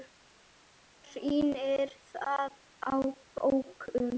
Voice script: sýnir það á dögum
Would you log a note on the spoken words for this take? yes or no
no